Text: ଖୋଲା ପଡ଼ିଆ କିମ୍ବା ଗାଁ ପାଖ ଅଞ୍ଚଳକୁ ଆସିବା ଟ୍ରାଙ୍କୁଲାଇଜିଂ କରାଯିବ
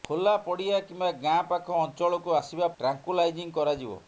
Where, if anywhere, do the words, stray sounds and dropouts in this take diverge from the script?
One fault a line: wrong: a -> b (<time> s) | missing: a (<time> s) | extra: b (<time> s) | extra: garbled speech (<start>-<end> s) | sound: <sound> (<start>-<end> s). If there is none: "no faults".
no faults